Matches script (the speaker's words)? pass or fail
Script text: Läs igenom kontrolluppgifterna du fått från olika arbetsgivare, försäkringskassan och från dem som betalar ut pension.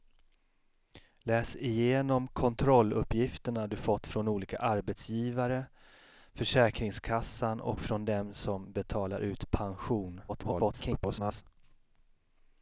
fail